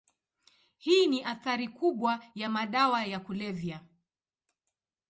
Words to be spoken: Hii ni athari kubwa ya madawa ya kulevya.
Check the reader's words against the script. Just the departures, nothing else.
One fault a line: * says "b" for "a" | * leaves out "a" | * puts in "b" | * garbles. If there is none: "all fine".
all fine